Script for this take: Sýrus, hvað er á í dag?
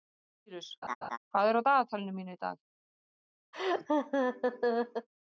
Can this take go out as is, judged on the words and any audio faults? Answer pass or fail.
fail